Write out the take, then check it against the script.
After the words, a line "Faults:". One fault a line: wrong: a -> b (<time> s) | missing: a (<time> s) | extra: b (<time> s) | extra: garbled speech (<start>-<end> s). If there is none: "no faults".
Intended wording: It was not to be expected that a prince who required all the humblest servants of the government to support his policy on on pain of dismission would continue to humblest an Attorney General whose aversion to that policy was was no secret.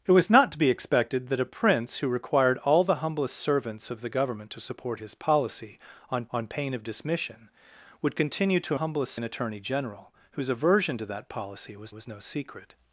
It was not to be expected that a prince who required all the humblest servants of the government to support his policy on on pain of dismission would continue to humblest an Attorney General whose aversion to that policy was was no secret.
Faults:
no faults